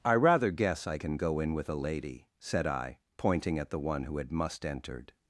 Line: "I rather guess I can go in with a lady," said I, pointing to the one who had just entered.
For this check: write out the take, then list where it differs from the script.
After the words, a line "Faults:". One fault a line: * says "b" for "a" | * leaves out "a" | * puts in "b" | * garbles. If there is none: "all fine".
"I rather guess I can go in with a lady," said I, pointing at the one who had must entered.
Faults:
* says "at" for "to"
* says "must" for "just"